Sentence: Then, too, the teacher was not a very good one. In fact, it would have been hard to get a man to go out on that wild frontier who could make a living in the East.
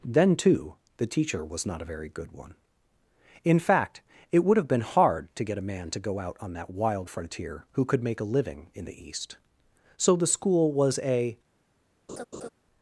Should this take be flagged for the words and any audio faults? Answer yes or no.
yes